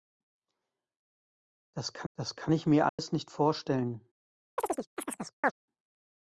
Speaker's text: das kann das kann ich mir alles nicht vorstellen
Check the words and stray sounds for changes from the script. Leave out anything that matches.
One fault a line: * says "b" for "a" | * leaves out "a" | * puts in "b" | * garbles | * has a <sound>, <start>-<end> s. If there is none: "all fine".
* has a dropout, 2.9-3.0 s
* has a chirp, 4.6-5.5 s